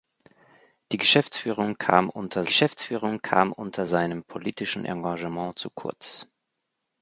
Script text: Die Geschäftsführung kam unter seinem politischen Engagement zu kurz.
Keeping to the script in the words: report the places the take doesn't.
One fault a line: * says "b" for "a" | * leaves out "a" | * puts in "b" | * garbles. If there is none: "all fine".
* puts in "Geschäftsführung kam unter"